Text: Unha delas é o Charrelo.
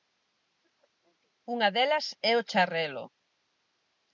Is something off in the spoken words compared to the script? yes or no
no